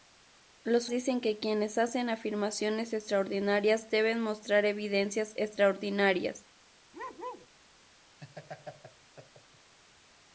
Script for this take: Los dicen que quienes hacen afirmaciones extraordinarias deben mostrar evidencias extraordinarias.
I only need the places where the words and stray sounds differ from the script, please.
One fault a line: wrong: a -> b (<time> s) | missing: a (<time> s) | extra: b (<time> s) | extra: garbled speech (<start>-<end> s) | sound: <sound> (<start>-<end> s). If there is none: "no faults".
sound: bark (6.9-7.5 s)
sound: laugh (8.2-9.7 s)